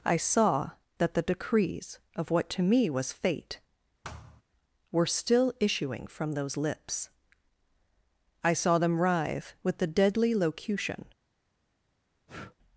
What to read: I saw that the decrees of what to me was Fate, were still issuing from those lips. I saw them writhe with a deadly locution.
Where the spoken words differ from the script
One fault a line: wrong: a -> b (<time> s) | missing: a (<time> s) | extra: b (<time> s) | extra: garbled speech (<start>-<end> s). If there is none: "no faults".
wrong: a -> the (9.8 s)